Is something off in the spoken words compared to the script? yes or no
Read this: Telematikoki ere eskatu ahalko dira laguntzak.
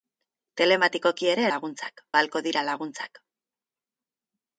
yes